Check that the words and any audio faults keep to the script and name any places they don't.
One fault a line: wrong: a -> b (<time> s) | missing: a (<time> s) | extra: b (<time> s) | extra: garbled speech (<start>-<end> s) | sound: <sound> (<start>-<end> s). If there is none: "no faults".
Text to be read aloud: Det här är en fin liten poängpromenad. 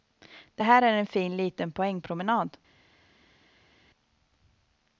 no faults